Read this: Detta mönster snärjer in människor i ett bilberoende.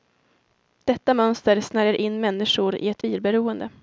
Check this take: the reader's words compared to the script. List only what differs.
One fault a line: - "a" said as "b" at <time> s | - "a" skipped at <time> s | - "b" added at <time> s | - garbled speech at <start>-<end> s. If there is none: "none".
none